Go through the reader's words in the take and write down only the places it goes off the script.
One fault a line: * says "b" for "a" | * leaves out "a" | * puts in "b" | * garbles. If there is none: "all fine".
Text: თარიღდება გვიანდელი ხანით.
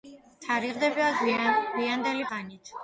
all fine